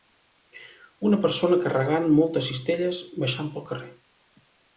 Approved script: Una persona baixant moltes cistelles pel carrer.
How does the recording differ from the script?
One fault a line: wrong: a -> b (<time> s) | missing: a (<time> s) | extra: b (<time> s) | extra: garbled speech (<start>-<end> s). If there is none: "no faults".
wrong: baixant -> carregant (1.6 s)
extra: baixant (3.2 s)